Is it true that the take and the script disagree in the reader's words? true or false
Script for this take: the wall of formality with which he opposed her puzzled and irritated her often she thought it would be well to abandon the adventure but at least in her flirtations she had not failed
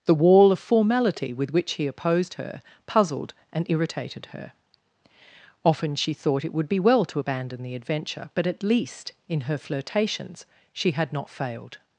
false